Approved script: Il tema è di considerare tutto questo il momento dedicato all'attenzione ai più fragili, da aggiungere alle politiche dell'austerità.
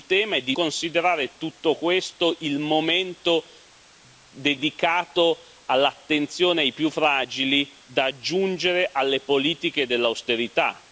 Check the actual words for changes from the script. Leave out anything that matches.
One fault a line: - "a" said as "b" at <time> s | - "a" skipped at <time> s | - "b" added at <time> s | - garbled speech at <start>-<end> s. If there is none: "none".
none